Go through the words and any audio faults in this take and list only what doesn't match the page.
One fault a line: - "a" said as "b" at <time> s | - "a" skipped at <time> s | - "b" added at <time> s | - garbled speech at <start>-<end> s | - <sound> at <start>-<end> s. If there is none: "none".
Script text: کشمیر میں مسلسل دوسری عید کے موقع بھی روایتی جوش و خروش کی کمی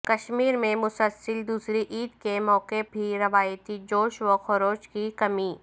none